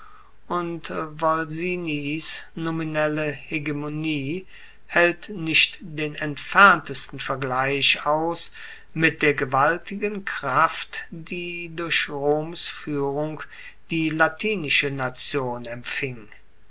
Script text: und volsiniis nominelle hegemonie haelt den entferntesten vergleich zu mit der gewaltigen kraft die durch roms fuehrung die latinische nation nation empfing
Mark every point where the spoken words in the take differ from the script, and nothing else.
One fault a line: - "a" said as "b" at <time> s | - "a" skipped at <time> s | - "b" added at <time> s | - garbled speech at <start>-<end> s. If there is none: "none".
- "nicht" added at 5.3 s
- "zu" said as "aus" at 8.0 s
- "nation" skipped at 15.6 s